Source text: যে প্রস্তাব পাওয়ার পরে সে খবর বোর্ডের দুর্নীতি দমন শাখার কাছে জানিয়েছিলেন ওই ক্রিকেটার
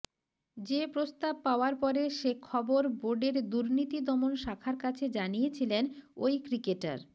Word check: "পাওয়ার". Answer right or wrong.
right